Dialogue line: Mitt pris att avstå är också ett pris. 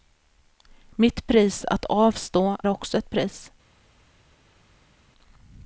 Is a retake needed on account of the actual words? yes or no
yes